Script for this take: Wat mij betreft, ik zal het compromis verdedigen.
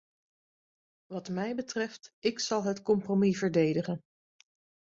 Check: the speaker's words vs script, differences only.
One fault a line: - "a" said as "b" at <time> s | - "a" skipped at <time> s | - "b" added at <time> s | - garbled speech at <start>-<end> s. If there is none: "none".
none